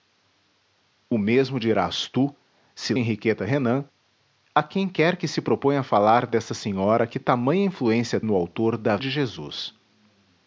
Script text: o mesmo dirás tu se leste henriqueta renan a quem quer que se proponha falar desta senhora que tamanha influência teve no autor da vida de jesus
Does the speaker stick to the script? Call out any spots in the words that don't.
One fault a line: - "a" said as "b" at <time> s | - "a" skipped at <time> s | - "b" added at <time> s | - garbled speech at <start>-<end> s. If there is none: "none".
- "leste" skipped at 2.9 s
- "teve" skipped at 8.2 s
- "vida" skipped at 9.0 s